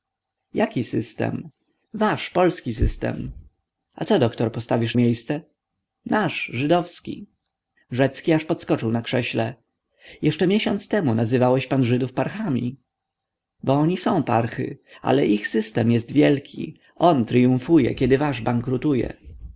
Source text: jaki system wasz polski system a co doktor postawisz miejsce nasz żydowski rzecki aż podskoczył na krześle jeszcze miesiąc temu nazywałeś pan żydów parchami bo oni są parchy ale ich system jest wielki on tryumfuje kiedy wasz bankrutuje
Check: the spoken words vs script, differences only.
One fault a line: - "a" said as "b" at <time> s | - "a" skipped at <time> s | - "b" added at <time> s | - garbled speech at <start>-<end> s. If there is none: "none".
none